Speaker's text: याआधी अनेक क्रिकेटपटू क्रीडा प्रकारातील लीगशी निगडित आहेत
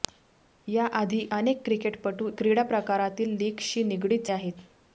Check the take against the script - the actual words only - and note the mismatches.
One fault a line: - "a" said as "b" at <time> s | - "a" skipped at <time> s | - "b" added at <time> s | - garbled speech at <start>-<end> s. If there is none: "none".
none